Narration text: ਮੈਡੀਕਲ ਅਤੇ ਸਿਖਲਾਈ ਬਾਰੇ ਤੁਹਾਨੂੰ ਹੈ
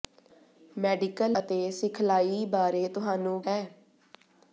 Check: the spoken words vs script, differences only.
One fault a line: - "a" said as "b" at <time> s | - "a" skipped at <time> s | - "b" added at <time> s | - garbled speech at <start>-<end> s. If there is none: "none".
none